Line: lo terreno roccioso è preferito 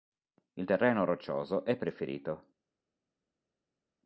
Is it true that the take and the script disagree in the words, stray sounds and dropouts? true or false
true